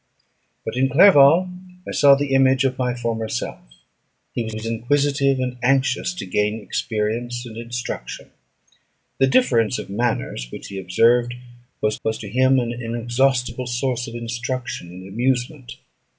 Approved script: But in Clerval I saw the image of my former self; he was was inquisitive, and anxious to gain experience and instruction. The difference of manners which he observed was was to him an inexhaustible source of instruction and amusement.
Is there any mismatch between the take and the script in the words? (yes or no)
no